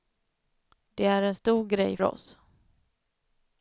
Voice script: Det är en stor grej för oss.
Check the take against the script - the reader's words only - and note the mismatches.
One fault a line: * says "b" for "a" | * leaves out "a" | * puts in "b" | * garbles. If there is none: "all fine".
* leaves out "för"